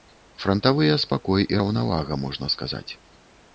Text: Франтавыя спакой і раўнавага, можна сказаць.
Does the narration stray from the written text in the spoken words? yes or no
no